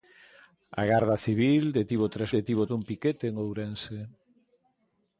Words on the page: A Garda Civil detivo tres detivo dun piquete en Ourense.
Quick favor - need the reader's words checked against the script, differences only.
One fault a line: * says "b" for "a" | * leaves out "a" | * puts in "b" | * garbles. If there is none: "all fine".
all fine